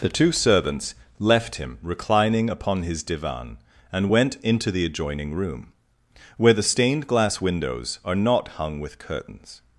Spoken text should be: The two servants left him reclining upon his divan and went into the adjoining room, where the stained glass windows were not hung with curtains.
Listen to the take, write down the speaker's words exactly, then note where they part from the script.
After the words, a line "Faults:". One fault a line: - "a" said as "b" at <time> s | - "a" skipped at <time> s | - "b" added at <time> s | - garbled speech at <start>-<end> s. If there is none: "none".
The two servants left him reclining upon his divan and went into the adjoining room, where the stained glass windows are not hung with curtains.
Faults:
- "were" said as "are" at 8.1 s